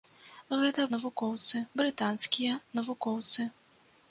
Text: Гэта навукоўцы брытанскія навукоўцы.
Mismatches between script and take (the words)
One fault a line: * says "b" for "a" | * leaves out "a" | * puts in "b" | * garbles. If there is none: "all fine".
all fine